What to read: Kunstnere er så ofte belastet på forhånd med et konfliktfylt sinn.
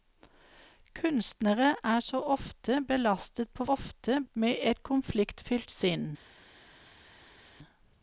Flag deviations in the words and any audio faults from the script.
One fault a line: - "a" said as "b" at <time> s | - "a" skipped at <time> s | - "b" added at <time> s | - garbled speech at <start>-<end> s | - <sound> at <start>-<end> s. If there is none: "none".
- "forhånd" said as "ofte" at 3.7 s